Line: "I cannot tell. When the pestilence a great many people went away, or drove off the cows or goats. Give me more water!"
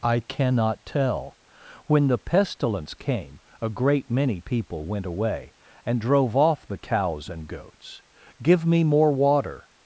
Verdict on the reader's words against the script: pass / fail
fail